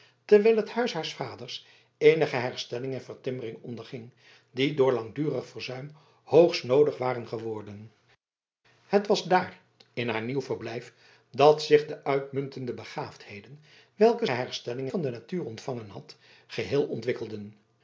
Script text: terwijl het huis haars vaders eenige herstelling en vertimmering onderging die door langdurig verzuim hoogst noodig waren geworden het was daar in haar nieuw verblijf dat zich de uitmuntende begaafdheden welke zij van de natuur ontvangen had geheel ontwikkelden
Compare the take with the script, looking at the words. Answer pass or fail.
fail